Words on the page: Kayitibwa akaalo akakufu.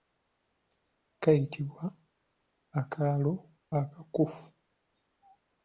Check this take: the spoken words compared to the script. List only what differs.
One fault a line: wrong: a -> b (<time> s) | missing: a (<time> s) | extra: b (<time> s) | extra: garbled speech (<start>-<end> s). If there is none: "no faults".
no faults